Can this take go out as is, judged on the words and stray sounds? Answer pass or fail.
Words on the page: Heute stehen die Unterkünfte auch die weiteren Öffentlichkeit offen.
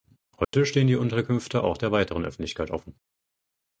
fail